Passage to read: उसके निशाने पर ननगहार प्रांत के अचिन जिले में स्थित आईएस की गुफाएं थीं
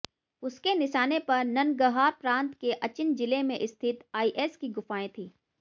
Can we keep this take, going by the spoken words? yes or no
yes